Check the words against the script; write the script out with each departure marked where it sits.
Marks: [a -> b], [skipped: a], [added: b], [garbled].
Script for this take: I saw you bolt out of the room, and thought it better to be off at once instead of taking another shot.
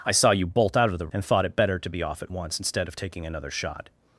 I saw you bolt out of the [skipped: room,] and thought it better to be off at once instead of taking another shot.